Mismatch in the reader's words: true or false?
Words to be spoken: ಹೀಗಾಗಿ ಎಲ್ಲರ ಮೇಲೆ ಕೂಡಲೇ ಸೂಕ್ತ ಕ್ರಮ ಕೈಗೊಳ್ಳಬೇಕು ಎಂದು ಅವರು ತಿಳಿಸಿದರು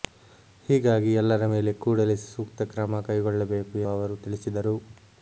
true